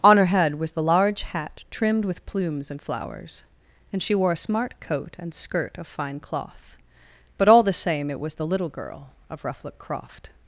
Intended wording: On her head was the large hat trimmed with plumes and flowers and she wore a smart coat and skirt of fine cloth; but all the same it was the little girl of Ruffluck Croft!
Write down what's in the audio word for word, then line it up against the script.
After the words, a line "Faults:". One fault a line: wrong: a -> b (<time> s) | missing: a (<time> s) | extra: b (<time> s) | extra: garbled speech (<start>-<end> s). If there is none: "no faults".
On her head was the large hat trimmed with plumes and flowers and she wore a smart coat and skirt of fine cloth; but all the same it was the little girl of Ruffluck Croft!
Faults:
no faults